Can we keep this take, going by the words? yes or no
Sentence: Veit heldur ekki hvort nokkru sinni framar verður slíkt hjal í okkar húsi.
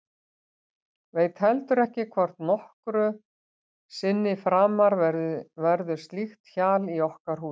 yes